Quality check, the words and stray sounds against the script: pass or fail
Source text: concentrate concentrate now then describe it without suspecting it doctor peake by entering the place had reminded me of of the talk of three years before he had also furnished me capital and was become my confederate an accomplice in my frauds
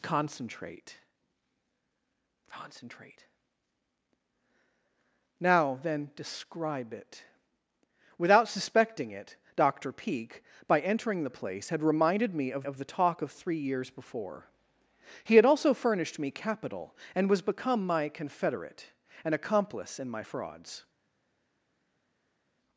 pass